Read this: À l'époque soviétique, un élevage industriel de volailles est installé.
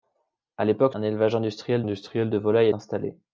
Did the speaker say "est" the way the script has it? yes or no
no